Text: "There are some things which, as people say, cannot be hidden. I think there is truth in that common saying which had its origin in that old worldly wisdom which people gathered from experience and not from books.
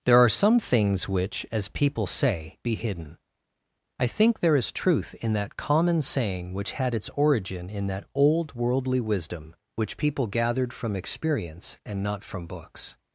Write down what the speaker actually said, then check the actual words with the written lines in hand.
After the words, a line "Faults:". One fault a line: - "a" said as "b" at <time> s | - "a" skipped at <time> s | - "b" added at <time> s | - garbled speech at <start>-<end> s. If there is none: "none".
"There are some things which, as people say, be hidden. I think there is truth in that common saying which had its origin in that old worldly wisdom which people gathered from experience and not from books.
Faults:
- "cannot" skipped at 2.6 s